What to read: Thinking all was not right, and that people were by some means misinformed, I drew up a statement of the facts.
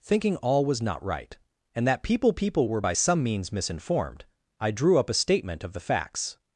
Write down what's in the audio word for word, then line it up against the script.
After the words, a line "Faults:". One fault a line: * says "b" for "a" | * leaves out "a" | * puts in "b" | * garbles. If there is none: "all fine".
Thinking all was not right, and that people people were by some means misinformed, I drew up a statement of the facts.
Faults:
* puts in "people"